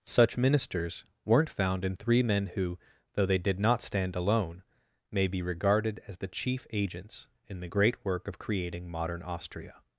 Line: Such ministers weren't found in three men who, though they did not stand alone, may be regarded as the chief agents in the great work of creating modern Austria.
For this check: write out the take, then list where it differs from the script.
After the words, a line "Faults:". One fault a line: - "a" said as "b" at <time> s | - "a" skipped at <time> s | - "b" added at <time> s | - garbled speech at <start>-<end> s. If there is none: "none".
Such ministers weren't found in three men who, though they did not stand alone, may be regarded as the chief agents in the great work of creating modern Austria.
Faults:
none